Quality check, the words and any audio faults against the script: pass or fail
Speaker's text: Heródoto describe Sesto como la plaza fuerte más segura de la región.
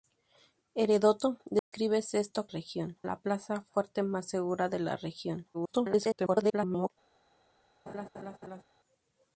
fail